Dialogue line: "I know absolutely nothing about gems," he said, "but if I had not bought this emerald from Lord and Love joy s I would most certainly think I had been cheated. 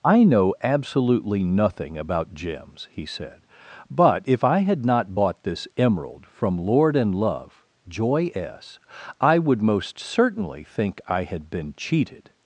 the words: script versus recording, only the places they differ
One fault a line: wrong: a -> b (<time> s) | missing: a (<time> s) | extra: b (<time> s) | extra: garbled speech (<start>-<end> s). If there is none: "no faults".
no faults